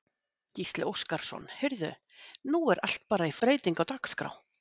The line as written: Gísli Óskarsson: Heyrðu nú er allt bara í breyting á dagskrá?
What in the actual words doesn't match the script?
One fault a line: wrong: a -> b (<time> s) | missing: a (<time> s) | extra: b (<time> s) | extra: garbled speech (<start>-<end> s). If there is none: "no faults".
no faults